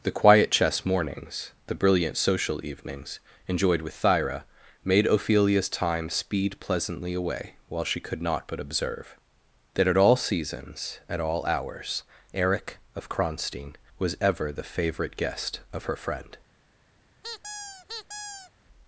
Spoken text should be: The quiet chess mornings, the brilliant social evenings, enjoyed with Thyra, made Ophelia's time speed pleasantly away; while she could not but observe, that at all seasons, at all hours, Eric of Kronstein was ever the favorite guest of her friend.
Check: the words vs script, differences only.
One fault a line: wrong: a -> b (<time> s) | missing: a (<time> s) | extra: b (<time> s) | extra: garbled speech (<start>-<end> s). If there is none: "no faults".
no faults